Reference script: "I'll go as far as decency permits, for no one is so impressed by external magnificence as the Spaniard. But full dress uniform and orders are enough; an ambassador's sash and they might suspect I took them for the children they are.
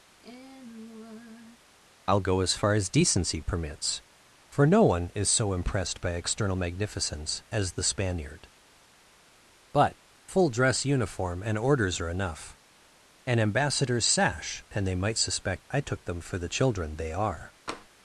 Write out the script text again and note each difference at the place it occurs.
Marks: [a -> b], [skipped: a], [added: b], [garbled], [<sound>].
[sigh] "I'll go as far as decency permits, for no one is so impressed by external magnificence as the Spaniard. But full dress uniform and orders are enough; an ambassador's sash and they might suspect I took them for the children they are. [tap]